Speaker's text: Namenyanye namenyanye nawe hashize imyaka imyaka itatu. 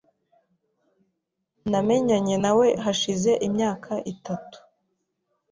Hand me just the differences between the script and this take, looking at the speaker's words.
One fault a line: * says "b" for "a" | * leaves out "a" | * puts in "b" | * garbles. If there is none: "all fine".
* leaves out "namenyanye"
* leaves out "imyaka"